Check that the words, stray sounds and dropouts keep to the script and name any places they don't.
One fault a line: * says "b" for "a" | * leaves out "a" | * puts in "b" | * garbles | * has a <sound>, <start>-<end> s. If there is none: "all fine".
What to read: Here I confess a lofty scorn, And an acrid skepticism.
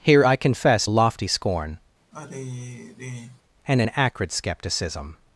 * has a sigh, 2.1-3.4 s